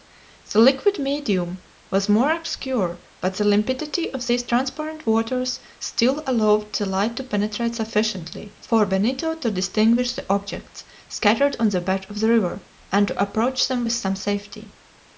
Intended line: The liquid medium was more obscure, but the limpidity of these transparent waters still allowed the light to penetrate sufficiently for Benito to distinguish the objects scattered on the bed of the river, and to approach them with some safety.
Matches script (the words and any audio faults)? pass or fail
pass